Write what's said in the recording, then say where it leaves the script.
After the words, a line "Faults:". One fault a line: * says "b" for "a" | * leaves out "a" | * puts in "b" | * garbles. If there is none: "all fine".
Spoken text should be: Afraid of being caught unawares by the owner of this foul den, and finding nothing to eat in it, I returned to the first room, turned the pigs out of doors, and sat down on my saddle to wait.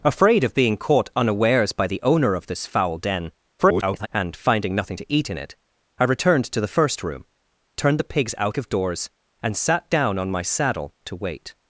Afraid of being caught unawares by the owner of this foul den, [garbled] and finding nothing to eat in it, I returned to the first room, turned the pigs out of doors, and sat down on my saddle to wait.
Faults:
* garbles